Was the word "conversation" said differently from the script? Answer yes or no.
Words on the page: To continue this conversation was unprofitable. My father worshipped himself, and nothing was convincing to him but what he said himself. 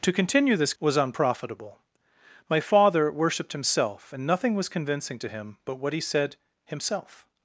yes